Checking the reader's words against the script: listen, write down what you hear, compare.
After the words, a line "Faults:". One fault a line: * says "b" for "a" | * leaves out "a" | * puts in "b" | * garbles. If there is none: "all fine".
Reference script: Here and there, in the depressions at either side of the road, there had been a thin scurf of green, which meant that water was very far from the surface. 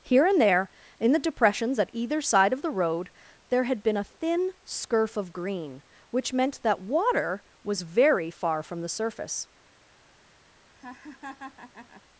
Here and there, in the depressions at either side of the road, there had been a thin scurf of green, which meant that water was very far from the surface.
Faults:
all fine